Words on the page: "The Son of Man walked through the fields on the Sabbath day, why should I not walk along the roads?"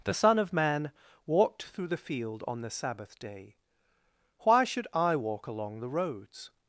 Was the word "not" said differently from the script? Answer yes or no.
yes